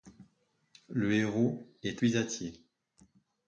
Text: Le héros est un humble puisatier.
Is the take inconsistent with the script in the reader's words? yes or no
yes